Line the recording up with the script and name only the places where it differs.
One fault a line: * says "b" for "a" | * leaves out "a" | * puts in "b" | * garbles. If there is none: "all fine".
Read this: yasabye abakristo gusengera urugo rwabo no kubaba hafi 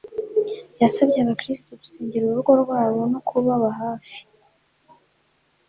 all fine